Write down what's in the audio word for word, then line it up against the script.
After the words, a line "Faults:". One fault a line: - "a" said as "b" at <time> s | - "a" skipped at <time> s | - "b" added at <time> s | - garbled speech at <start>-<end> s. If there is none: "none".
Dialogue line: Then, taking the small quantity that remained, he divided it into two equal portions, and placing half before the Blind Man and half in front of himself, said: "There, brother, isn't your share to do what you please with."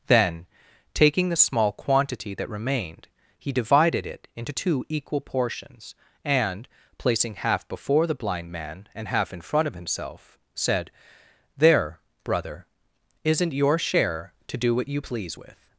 Then, taking the small quantity that remained, he divided it into two equal portions, and placing half before the Blind Man and half in front of himself, said: "There, brother, isn't your share to do what you please with."
Faults:
none